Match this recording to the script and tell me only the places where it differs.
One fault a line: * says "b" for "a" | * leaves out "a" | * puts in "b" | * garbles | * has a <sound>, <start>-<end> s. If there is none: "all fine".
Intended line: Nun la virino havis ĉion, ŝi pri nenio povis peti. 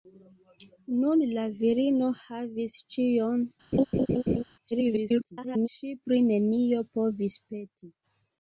* has a laugh, 3.7-4.4 s
* garbles